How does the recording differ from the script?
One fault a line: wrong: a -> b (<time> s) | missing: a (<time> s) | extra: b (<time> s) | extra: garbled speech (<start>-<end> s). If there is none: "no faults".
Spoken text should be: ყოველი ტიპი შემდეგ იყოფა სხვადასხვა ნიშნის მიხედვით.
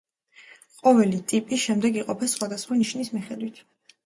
no faults